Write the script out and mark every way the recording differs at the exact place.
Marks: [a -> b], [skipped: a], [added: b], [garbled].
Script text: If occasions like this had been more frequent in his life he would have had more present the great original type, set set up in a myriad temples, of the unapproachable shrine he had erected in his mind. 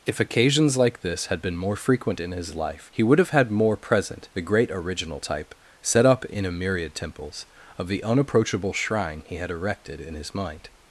If occasions like this had been more frequent in his life he would have had more present the great original type, set [skipped: set] up in a myriad temples, of the unapproachable shrine he had erected in his mind.